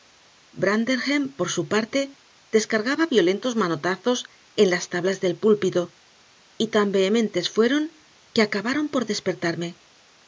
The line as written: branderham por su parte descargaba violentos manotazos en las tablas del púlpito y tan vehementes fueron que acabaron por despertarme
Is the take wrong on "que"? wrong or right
right